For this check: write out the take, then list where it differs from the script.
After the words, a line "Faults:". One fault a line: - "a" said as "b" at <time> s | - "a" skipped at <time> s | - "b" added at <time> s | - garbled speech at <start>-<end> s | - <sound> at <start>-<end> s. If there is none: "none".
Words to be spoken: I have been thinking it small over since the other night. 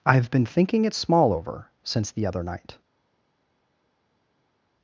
I have been thinking it small over since the other night.
Faults:
none